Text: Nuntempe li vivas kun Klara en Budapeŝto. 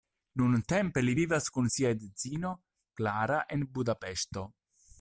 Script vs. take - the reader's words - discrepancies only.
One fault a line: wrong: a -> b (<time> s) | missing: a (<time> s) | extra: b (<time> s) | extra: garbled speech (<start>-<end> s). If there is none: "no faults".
extra: sia edzino (1.8 s)